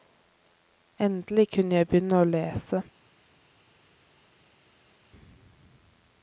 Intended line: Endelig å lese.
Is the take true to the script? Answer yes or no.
no